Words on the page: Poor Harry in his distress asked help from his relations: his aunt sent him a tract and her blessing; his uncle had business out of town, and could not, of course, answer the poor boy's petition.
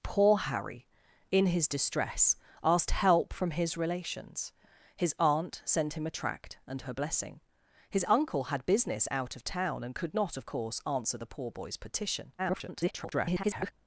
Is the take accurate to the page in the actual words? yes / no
no